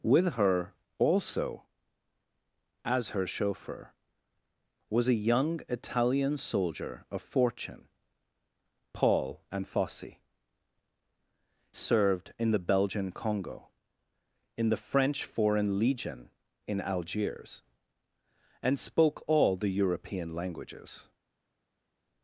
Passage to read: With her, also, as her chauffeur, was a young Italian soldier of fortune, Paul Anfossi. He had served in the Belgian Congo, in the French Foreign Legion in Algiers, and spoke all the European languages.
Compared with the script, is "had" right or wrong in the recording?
wrong